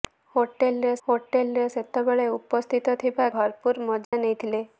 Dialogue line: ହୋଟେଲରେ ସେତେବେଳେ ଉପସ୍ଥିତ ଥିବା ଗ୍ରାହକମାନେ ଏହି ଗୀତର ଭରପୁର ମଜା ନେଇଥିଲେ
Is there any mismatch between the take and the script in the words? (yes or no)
yes